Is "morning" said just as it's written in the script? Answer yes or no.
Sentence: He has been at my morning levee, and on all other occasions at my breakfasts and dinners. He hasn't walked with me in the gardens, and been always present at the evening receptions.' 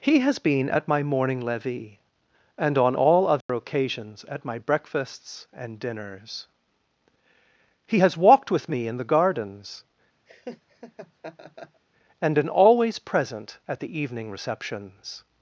yes